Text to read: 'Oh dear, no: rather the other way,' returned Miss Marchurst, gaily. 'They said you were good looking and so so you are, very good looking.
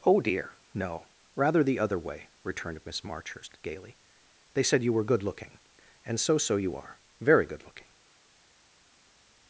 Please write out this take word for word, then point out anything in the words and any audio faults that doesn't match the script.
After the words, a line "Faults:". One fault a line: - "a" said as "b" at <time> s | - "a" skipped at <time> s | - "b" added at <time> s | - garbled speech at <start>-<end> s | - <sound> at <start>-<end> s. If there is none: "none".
'Oh dear, no: rather the other way,' returned Miss Marchurst, gaily. 'They said you were good looking and so so you are, very good looking.
Faults:
none